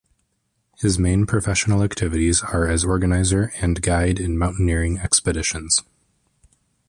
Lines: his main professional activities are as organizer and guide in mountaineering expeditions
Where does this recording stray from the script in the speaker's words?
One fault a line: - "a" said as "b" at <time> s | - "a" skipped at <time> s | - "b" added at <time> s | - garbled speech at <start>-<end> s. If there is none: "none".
none